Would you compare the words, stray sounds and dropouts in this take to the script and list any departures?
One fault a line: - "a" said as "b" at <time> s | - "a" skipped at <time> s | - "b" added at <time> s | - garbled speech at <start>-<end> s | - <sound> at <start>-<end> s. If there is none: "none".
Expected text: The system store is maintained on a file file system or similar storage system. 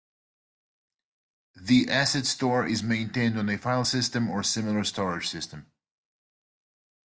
- "system" said as "asset" at 1.9 s
- "file" skipped at 3.8 s